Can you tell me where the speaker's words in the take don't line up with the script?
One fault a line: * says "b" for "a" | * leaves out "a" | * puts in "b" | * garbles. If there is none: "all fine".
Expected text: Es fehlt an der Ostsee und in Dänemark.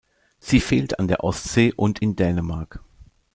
* says "Sie" for "Es"